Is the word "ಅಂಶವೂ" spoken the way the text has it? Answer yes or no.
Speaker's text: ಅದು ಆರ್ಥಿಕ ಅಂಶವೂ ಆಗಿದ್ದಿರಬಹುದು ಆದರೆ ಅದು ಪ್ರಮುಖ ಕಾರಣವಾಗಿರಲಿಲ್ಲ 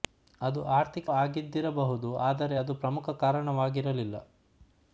no